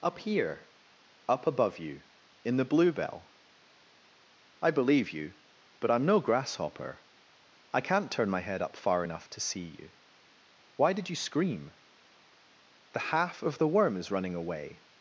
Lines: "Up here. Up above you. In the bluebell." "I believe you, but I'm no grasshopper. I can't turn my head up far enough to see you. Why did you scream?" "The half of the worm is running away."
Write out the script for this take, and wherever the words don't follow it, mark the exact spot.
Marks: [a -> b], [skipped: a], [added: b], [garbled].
"Up here. Up above you. In the bluebell." "I believe you, but I'm no grasshopper. I can't turn my head up far enough to see you. Why did you scream?" "The half of the worm is running away."